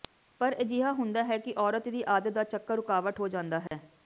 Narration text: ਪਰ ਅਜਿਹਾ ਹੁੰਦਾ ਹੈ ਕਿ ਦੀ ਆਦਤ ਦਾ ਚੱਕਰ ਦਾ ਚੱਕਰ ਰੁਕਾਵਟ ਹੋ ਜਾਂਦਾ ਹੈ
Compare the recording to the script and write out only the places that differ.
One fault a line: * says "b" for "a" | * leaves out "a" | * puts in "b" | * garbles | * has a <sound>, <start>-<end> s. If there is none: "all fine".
* puts in "ਔਰਤ"
* leaves out "ਦਾ ਚੱਕਰ"
* has a dropout, 3.7-3.7 s